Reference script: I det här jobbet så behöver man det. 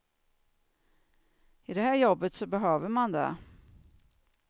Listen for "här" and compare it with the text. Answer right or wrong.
right